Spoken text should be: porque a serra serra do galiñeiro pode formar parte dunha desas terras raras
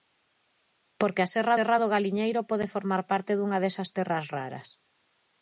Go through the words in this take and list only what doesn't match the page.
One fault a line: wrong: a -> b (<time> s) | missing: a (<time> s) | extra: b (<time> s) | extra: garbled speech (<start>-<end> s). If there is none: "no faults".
no faults